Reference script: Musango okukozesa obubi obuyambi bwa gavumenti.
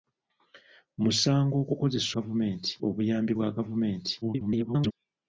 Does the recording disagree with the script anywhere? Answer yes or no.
yes